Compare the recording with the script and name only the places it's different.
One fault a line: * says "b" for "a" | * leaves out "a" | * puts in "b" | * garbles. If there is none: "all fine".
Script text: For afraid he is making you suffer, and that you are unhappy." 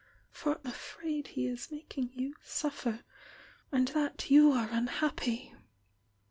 all fine